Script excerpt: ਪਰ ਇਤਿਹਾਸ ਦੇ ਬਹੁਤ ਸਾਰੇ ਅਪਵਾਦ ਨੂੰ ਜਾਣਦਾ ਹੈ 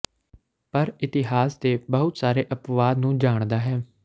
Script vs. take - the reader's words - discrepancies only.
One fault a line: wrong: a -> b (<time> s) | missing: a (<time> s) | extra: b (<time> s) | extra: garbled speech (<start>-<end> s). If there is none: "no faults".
no faults